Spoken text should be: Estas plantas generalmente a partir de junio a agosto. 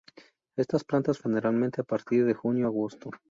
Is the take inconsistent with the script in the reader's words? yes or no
no